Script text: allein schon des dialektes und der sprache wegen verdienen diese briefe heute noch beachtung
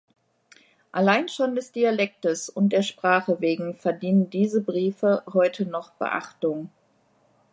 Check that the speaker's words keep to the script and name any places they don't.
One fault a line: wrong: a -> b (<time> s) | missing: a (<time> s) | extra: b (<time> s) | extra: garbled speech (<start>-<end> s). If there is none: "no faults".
no faults